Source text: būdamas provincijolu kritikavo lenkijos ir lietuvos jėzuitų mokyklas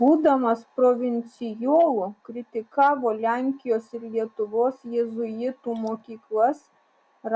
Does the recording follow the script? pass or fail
pass